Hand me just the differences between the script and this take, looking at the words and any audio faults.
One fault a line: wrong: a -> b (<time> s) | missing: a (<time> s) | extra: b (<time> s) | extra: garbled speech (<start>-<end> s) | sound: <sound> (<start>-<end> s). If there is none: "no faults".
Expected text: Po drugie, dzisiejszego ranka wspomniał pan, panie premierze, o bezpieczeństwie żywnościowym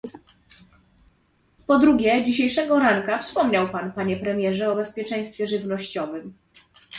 no faults